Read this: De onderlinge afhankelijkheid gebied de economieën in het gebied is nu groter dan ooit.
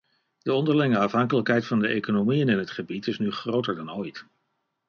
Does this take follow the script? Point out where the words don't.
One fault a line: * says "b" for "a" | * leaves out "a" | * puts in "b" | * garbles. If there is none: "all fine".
* says "van" for "gebied"